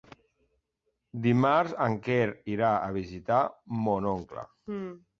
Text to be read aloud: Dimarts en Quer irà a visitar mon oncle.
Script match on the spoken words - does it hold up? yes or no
yes